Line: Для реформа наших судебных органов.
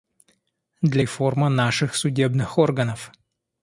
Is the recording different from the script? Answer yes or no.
no